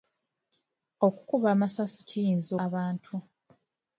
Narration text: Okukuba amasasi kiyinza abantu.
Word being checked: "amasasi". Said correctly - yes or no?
yes